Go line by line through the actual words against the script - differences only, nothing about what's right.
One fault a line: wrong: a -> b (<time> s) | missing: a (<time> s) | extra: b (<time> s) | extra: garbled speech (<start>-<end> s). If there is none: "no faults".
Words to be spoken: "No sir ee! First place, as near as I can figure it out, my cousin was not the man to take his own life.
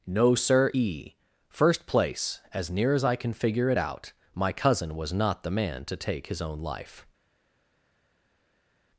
no faults